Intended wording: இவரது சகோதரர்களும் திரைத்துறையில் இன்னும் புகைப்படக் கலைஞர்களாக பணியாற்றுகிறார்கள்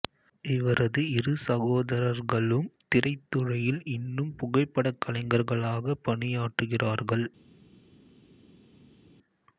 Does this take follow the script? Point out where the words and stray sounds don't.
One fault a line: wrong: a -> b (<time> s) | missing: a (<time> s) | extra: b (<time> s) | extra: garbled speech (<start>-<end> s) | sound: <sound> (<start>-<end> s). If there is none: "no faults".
extra: இரு (1.1 s)